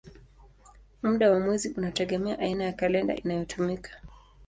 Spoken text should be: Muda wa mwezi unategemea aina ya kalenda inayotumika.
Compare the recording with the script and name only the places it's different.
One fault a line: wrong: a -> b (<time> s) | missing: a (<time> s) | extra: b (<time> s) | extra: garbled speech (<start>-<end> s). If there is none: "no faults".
no faults